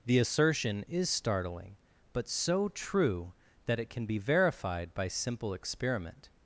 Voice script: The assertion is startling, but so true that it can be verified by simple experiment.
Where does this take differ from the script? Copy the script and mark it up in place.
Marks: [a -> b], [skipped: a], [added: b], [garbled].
The assertion is startling, but so true that it can be verified by simple experiment.